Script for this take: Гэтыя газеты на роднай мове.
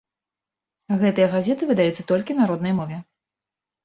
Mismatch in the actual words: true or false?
true